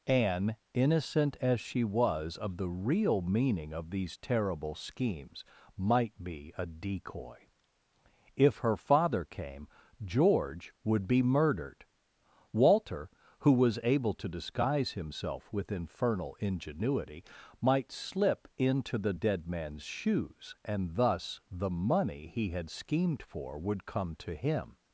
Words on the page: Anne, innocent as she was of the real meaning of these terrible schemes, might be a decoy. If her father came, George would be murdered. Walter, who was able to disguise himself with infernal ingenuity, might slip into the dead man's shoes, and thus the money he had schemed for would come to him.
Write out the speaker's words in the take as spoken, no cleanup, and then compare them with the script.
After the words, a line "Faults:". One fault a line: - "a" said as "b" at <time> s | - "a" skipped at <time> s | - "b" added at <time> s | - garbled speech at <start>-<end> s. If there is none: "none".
Anne, innocent as she was of the real meaning of these terrible schemes, might be a decoy. If her father came, George would be murdered. Walter, who was able to disguise himself with infernal ingenuity, might slip into the dead man's shoes, and thus the money he had schemed for would come to him.
Faults:
none